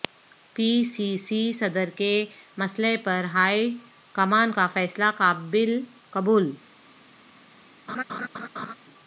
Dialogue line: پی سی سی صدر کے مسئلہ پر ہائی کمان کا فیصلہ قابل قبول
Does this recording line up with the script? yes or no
yes